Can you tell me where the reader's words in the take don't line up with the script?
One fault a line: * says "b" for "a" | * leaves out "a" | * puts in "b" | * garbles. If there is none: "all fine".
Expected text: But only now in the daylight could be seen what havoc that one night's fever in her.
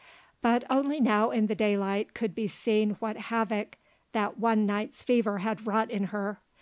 * puts in "had wrought"